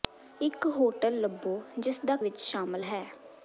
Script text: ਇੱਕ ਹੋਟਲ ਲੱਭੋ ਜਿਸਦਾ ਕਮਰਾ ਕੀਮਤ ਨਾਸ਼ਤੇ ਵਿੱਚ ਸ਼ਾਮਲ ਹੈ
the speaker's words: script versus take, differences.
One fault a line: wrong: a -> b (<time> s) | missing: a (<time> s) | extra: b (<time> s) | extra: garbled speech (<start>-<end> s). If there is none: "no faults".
missing: ਕਮਰਾ ਕੀਮਤ ਨਾਸ਼ਤੇ (2.1 s)